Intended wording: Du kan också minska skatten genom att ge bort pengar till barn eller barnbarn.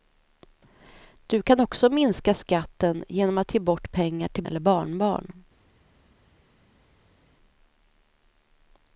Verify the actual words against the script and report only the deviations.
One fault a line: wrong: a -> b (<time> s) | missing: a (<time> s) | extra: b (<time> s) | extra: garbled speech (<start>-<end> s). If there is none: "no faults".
missing: barn (4.4 s)